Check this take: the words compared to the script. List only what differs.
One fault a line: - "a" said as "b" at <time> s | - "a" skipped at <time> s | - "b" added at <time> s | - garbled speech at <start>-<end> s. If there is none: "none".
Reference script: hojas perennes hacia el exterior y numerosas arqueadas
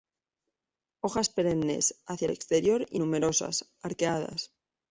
none